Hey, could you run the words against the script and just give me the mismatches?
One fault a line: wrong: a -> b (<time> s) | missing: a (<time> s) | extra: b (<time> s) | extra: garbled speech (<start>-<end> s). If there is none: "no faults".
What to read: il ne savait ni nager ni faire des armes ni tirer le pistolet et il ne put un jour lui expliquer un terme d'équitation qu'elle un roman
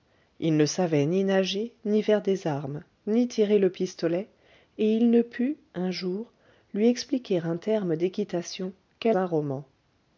no faults